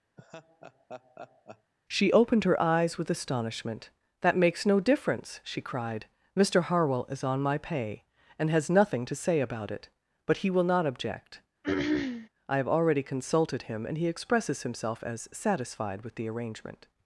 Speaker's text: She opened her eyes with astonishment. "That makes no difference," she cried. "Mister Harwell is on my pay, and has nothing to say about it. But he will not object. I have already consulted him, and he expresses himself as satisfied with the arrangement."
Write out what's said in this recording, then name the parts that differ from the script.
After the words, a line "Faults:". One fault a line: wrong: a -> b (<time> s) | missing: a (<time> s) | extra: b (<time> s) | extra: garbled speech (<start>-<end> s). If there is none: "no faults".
She opened her eyes with astonishment. "That makes no difference," she cried. "Mister Harwell is on my pay, and has nothing to say about it. But he will not object. I have already consulted him, and he expresses himself as satisfied with the arrangement."
Faults:
no faults